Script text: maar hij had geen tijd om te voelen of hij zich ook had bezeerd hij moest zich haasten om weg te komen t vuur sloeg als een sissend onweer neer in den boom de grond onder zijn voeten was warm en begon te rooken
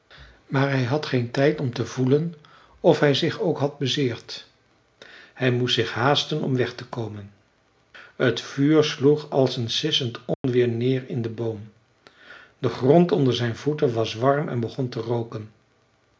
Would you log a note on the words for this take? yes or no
no